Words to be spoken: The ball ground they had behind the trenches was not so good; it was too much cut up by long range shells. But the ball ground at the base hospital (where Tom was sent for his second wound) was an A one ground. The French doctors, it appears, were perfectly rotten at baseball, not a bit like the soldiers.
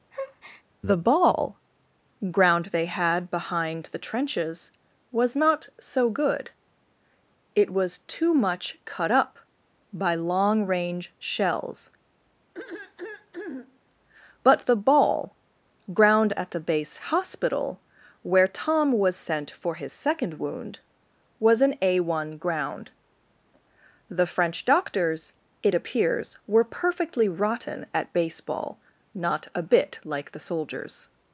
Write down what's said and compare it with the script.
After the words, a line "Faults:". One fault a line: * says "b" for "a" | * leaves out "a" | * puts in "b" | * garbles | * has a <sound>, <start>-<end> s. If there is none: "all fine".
The ball ground they had behind the trenches was not so good; it was too much cut up by long range shells. But the ball ground at the base hospital (where Tom was sent for his second wound) was an A one ground. The French doctors, it appears, were perfectly rotten at baseball, not a bit like the soldiers.
Faults:
* has a breath, 0.1-0.6 s
* has a throat clearing, 12.5-13.8 s